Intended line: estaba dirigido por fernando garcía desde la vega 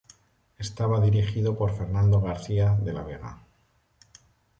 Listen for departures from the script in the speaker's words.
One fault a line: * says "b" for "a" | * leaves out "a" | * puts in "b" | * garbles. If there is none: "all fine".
* says "de" for "desde"